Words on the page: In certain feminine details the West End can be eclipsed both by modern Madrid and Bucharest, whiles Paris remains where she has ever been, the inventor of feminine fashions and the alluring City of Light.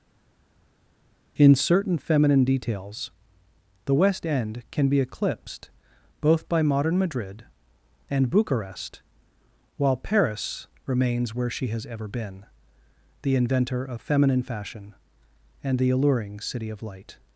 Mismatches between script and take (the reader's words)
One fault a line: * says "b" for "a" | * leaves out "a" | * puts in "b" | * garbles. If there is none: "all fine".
* says "while" for "whiles"
* says "fashion" for "fashions"